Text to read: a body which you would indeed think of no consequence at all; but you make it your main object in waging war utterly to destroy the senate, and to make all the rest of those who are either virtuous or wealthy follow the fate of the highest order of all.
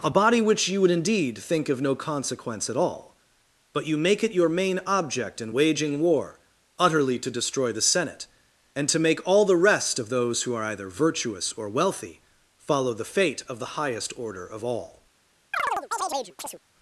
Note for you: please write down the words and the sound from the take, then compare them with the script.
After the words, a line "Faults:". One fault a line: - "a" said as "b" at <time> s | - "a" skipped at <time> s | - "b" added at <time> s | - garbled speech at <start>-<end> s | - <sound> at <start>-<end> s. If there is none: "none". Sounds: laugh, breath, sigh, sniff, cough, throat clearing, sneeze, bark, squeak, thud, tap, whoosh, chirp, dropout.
a body which you would indeed think of no consequence at all; but you make it your main object in waging war utterly to destroy the senate, and to make all the rest of those who are either virtuous or wealthy follow the fate of the highest order of all.
Faults:
- chirp at 15.5-16.6 s